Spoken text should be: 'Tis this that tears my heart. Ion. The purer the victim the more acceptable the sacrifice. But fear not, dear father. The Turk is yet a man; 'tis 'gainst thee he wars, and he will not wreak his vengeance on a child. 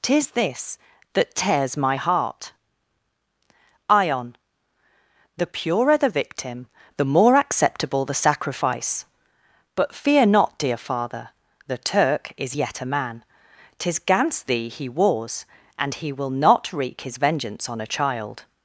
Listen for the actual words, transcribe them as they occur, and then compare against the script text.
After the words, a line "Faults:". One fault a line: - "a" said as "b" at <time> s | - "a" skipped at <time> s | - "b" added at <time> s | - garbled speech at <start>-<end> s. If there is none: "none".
'Tis this that tears my heart. Ion. The purer the victim the more acceptable the sacrifice. But fear not, dear father. The Turk is yet a man; 'tis 'gainst thee he wars, and he will not wreak his vengeance on a child.
Faults:
none